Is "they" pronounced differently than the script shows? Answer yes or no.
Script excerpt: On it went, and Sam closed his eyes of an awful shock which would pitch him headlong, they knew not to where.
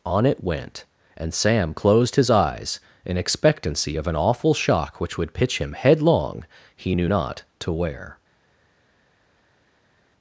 yes